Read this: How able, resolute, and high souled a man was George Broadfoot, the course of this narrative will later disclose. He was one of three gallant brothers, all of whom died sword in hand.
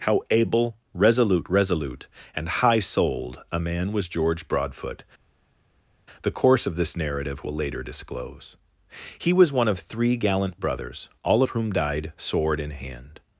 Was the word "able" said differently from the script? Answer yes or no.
no